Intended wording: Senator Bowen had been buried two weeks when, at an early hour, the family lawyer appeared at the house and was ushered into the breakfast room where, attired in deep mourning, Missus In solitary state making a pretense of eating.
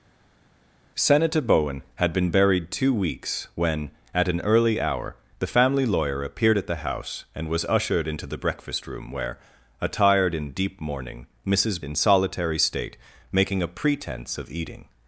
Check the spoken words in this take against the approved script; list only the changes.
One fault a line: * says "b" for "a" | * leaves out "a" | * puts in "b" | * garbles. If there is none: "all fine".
all fine